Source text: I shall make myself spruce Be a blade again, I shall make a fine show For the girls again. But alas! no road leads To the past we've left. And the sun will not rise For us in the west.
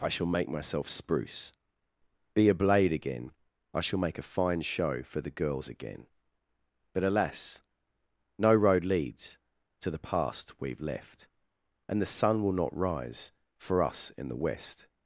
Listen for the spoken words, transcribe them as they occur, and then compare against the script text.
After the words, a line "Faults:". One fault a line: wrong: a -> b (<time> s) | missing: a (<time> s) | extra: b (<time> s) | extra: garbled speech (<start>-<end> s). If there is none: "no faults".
I shall make myself spruce Be a blade again, I shall make a fine show For the girls again. But alas! no road leads To the past we've left. And the sun will not rise For us in the west.
Faults:
no faults